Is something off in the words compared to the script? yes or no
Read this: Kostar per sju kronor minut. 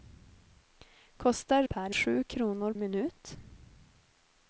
no